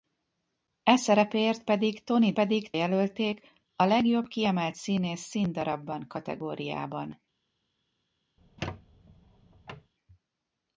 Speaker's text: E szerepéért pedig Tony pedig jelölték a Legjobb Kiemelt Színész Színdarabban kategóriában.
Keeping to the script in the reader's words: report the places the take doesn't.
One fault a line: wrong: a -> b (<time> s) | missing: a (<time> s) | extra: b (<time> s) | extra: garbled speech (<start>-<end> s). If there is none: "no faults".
no faults